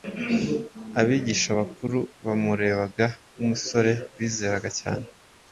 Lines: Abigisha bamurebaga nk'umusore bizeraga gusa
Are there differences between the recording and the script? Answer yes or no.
yes